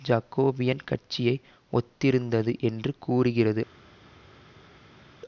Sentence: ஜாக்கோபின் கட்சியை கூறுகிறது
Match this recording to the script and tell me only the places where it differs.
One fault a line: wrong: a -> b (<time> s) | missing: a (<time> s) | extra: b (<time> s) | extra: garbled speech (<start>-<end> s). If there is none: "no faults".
extra: ஒத்திருந்தது என்று (1.7 s)